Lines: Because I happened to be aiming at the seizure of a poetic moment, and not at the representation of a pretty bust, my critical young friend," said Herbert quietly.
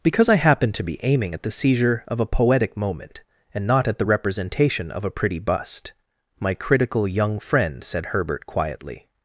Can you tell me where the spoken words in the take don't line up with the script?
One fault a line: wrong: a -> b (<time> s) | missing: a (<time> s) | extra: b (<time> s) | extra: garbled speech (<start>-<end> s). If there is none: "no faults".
no faults